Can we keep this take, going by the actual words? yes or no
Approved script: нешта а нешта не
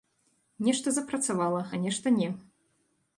no